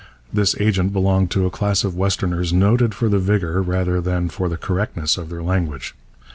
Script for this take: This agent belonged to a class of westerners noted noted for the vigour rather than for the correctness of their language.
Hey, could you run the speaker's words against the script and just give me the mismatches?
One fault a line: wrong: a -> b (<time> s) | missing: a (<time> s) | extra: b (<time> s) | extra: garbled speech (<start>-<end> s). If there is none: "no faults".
missing: noted (3.0 s)